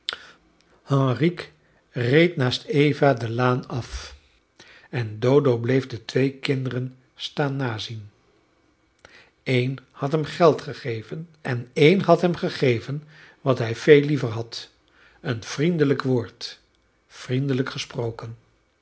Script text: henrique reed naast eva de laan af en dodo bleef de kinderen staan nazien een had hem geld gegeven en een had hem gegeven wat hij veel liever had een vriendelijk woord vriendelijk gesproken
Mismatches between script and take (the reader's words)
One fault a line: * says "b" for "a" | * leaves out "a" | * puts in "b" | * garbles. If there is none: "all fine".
* puts in "twee"